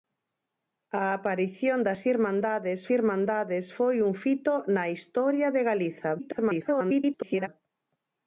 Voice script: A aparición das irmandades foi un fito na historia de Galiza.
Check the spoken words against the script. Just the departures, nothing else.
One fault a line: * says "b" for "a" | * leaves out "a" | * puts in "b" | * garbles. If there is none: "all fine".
* puts in "irmandades"
* garbles